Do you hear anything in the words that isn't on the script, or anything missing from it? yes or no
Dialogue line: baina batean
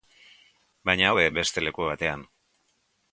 yes